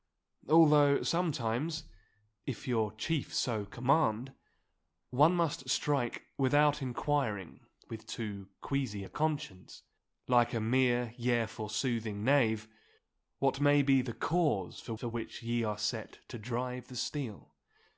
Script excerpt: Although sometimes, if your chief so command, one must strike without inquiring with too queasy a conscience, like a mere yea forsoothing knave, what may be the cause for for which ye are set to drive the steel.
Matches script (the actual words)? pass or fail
pass